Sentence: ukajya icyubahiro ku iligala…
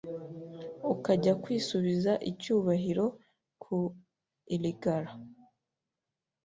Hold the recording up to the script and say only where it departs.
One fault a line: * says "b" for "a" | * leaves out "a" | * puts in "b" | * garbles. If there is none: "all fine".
* puts in "kwisubiza"